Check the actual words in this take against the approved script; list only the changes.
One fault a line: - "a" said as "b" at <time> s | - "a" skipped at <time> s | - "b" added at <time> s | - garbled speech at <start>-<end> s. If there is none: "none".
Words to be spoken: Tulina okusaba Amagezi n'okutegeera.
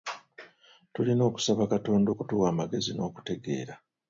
- "Katonda okutuwa" added at 1.7 s